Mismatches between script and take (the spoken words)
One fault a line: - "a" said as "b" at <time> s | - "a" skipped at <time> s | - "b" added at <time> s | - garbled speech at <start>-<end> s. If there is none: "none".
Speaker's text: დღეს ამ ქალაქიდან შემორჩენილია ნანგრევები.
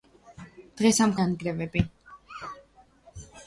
- "ქალაქიდან შემორჩენილია" skipped at 1.1 s